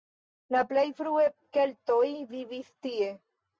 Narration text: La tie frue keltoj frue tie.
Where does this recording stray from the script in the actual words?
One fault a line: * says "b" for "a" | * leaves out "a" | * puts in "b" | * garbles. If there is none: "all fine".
* says "plej" for "tie"
* says "vivis" for "frue"